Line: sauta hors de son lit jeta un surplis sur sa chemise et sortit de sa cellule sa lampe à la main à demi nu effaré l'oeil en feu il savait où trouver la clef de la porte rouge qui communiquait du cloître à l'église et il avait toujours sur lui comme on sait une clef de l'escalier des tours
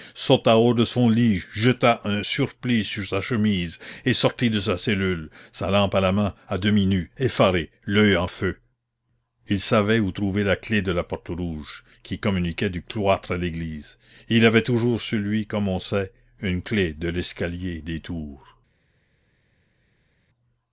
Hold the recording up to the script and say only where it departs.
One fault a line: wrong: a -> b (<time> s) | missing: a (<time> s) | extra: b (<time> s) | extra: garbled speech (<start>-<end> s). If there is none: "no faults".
no faults